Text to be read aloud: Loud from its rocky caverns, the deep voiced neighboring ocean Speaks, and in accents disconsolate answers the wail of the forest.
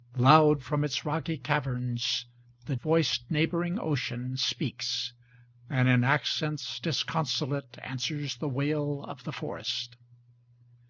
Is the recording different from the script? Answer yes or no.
yes